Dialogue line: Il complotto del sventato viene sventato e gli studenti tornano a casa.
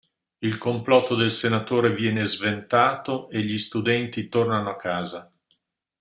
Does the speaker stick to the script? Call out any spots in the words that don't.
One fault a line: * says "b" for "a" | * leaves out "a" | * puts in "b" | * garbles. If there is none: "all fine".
* says "senatore" for "sventato"